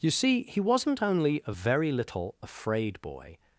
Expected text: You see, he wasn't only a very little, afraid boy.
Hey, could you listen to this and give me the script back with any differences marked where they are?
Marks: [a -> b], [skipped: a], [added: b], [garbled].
You see, he wasn't only a very little, afraid boy.